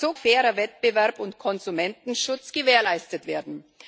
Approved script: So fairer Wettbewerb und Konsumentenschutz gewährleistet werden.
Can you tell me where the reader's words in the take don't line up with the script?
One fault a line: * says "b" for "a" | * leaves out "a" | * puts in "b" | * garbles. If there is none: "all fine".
all fine